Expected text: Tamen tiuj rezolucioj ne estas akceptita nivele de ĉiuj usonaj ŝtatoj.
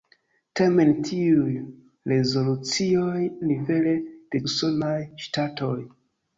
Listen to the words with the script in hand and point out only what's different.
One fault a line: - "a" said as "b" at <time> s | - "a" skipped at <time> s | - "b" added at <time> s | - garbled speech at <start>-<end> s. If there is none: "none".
- "ne estas akceptita" skipped at 3.2 s
- "ĉiuj" skipped at 4.4 s